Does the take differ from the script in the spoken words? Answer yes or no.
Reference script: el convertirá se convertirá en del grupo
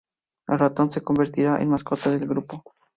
yes